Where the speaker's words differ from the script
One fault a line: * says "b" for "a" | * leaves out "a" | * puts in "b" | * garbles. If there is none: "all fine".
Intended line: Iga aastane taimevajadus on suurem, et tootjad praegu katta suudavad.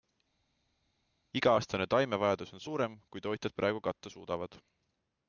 * says "kui" for "et"